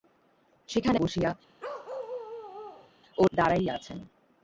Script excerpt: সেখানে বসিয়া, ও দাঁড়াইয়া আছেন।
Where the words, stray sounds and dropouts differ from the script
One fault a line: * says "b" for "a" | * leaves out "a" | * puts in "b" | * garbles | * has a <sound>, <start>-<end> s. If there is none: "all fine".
* has a bark, 1.6-2.9 s